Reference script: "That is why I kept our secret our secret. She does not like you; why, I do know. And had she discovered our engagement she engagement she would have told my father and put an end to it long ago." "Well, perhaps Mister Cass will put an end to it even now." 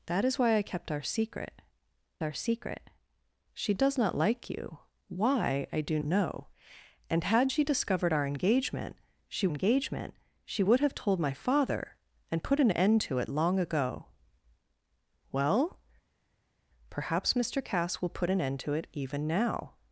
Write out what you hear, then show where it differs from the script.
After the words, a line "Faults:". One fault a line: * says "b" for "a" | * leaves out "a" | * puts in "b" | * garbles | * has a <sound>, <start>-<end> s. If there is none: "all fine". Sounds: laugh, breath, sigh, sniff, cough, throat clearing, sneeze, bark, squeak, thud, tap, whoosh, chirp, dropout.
"That is why I kept our secret our secret. She does not like you; why, I do know. And had she discovered our engagement she engagement she would have told my father and put an end to it long ago." "Well, perhaps Mister Cass will put an end to it even now."
Faults:
all fine